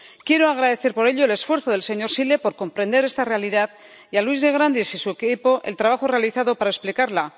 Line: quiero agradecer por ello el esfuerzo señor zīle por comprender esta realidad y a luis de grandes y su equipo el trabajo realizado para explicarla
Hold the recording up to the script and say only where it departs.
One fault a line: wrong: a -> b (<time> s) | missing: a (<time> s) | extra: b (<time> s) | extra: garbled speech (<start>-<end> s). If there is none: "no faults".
extra: del (1.7 s)